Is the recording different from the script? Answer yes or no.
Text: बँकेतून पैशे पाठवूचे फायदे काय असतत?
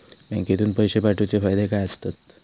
no